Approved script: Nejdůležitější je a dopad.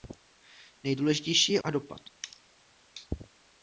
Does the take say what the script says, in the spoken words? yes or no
yes